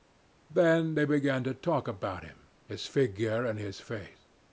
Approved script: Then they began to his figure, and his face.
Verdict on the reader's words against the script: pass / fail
fail